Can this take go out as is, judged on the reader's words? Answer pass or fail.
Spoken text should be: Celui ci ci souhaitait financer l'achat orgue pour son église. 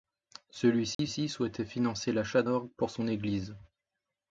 pass